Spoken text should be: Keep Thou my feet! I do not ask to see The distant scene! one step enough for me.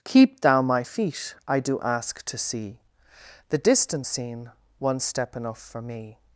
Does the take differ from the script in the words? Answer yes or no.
yes